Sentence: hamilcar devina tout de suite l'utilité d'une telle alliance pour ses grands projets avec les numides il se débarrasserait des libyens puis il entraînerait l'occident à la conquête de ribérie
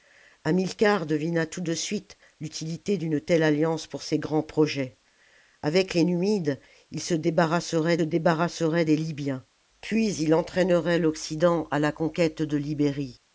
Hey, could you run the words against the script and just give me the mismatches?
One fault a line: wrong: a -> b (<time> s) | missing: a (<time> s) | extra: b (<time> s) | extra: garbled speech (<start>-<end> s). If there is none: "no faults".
extra: débarrasserait (8.0 s)